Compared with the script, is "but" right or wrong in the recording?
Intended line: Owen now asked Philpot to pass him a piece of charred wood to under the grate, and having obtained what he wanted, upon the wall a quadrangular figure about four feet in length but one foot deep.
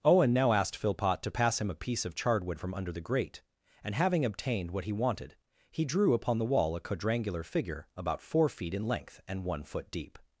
wrong